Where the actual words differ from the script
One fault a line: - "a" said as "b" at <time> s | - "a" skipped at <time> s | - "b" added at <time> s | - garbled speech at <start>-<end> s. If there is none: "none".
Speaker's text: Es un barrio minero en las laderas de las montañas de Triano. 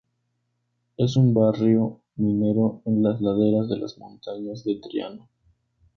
none